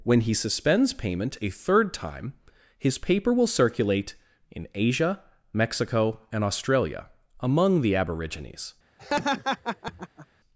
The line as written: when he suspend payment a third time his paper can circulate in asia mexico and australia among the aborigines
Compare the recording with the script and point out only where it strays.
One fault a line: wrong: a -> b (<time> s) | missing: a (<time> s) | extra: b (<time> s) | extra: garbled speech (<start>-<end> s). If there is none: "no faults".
wrong: suspend -> suspends (0.3 s)
wrong: can -> will (3.3 s)